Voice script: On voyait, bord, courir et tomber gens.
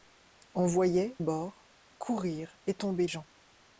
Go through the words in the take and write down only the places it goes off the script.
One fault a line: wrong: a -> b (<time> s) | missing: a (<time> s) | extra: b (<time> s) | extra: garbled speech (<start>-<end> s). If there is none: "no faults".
no faults